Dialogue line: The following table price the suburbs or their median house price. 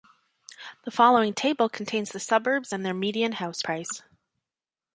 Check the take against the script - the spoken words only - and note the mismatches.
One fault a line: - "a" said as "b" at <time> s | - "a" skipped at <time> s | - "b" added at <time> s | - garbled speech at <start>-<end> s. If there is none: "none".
- "price" said as "contains" at 1.7 s
- "or" said as "and" at 2.7 s